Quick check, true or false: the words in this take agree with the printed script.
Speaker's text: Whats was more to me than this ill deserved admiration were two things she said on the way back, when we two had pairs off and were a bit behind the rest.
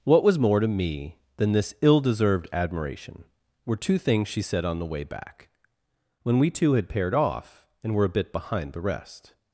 false